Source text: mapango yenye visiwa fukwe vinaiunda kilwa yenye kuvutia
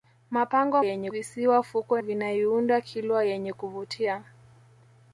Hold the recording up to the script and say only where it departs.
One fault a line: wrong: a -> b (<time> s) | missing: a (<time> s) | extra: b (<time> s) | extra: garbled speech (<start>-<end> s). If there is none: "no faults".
no faults